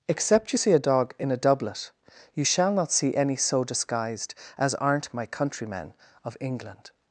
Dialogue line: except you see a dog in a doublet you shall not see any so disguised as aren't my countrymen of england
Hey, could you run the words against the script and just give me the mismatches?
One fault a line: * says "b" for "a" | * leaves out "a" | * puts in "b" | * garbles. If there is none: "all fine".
all fine